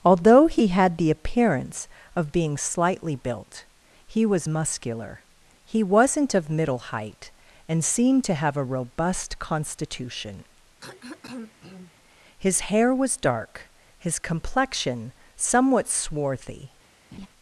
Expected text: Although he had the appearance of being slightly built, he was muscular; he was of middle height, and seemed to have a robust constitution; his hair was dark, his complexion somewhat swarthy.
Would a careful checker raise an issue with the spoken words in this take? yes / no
yes